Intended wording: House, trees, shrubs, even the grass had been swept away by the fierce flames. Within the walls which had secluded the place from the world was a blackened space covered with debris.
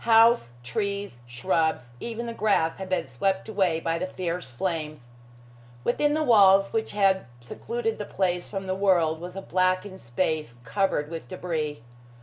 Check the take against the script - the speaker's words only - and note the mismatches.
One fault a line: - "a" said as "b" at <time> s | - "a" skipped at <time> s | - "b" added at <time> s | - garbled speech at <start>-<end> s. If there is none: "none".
none